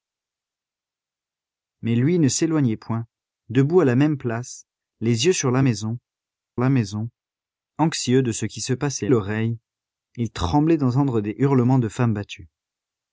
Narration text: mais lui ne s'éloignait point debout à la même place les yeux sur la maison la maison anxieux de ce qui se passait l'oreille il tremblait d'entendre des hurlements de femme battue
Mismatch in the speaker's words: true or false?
false